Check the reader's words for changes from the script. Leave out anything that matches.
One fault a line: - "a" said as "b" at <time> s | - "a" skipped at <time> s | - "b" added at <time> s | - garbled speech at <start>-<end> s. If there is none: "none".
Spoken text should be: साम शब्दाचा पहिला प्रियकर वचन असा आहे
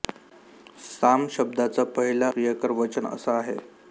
none